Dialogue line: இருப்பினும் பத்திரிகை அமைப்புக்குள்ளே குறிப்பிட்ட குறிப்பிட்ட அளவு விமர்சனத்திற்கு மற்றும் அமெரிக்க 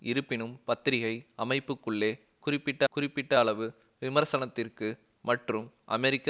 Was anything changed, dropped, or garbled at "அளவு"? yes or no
no